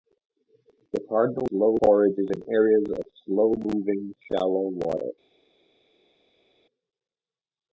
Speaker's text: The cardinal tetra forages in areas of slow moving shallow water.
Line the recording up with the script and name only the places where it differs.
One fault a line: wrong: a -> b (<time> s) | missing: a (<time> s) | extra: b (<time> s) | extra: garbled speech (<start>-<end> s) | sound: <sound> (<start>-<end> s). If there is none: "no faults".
wrong: tetra -> slow (1.5 s)